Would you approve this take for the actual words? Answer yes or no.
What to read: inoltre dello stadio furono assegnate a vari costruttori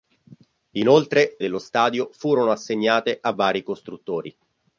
yes